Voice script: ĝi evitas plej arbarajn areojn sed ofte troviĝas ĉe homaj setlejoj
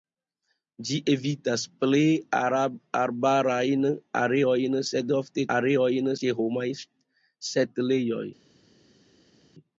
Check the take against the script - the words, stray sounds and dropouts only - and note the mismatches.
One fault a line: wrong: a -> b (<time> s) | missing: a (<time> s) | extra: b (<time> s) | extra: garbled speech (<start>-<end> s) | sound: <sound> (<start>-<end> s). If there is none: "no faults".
wrong: troviĝas -> areojn (5.6 s)